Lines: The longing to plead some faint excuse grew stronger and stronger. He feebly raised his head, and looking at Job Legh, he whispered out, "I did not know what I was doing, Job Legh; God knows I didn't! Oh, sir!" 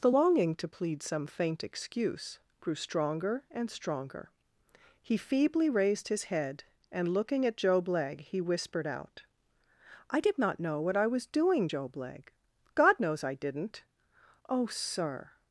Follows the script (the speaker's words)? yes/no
yes